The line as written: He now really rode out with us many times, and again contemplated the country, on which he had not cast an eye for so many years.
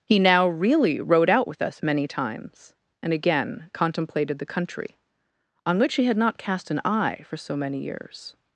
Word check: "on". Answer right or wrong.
right